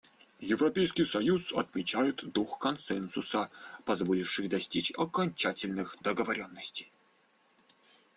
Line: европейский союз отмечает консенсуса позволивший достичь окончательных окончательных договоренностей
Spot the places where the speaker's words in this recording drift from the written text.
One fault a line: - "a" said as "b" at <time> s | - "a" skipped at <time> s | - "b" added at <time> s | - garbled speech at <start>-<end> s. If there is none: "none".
- "дух" added at 2.3 s
- "окончательных" skipped at 6.0 s